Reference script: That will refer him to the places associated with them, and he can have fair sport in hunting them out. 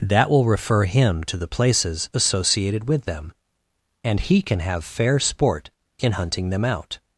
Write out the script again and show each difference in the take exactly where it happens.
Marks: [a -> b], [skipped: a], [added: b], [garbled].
That will refer him to the places associated with them, and he can have fair sport in hunting them out.